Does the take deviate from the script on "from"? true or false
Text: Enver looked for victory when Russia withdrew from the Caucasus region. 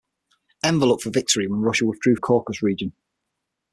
true